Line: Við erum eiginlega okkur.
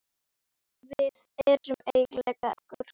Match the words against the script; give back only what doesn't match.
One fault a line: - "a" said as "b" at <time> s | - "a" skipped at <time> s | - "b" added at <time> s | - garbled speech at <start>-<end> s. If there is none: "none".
none